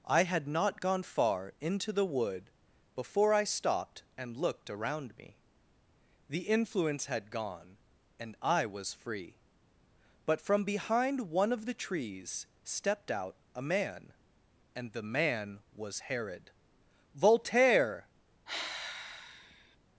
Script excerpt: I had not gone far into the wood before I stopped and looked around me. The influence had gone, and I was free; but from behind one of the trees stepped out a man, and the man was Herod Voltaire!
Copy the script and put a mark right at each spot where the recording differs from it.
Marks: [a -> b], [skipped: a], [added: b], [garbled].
I had not gone far into the wood before I stopped and looked around me. The influence had gone, and I was free; but from behind one of the trees stepped out a man, and the man was Herod Voltaire!